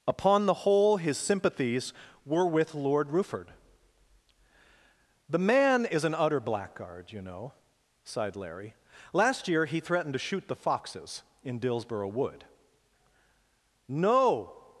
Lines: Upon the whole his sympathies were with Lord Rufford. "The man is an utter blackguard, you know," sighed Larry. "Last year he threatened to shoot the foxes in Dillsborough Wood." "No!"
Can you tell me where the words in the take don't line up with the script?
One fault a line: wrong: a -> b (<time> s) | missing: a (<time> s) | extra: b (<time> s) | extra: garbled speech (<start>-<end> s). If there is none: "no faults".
no faults